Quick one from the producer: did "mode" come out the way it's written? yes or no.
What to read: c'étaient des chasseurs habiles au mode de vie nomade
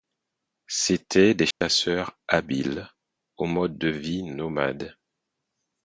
yes